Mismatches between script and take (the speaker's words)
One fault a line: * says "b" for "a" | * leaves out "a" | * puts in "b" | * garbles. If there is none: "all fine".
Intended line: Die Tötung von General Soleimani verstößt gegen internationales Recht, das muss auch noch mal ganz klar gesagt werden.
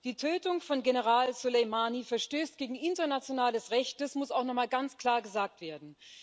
all fine